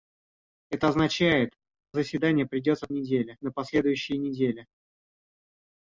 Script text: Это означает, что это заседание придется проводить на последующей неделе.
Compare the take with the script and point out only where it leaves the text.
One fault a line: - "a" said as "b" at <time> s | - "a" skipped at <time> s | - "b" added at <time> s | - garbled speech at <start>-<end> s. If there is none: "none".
- "что это" skipped at 1.5 s
- "проводить" said as "неделе" at 2.9 s